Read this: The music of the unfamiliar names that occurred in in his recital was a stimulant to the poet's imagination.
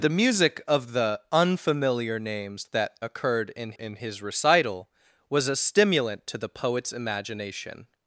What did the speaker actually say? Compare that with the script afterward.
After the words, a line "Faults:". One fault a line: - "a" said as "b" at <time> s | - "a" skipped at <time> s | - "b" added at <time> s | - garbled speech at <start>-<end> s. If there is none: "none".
The music of the unfamiliar names that occurred in in his recital was a stimulant to the poet's imagination.
Faults:
none